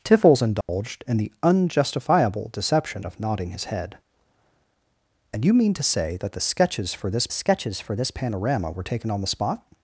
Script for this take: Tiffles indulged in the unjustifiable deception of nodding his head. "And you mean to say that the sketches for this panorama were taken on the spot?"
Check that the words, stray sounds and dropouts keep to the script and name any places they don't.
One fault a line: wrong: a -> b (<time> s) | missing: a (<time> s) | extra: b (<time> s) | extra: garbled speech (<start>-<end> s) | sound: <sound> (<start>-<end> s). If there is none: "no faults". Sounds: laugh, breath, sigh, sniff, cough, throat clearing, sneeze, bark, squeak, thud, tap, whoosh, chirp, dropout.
sound: dropout (0.6-0.7 s)
extra: sketches for this (7.3 s)